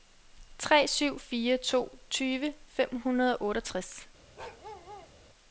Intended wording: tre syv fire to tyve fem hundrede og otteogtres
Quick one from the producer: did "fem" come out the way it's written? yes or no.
yes